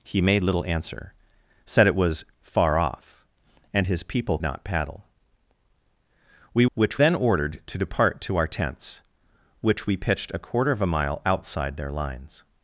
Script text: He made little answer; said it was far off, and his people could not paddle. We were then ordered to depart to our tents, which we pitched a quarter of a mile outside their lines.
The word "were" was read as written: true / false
false